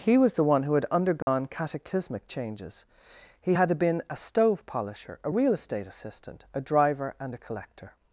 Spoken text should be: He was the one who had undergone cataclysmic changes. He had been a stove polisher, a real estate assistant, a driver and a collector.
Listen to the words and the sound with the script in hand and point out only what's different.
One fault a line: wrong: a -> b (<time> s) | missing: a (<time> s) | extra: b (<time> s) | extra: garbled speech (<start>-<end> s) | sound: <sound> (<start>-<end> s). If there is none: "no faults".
sound: dropout (1.2-1.3 s)